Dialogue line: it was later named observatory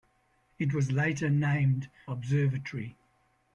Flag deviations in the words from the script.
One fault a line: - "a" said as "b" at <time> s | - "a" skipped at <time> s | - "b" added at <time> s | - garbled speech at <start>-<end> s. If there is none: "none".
none